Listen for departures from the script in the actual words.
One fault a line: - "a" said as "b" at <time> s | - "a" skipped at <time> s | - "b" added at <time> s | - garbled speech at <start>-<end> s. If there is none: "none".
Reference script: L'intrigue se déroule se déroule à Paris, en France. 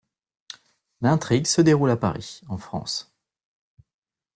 - "se déroule" skipped at 1.9 s